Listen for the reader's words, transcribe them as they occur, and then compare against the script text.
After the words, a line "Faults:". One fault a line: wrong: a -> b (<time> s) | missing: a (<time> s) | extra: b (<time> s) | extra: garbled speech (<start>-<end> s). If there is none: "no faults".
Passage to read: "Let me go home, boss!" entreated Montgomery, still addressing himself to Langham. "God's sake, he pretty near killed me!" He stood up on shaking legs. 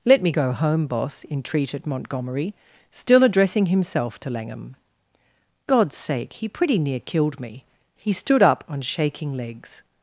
"Let me go home, boss!" entreated Montgomery, still addressing himself to Langham. "God's sake, he pretty near killed me!" He stood up on shaking legs.
Faults:
no faults